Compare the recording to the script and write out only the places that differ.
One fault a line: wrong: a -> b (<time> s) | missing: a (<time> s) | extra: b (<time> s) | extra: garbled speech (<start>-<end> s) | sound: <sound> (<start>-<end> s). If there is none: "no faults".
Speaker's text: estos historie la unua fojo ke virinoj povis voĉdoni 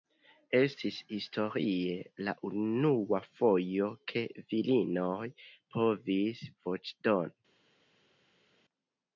wrong: estos -> estis (0.6 s)